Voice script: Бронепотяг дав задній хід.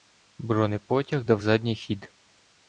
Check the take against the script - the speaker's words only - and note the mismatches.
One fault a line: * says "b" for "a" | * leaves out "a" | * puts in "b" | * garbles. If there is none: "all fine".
all fine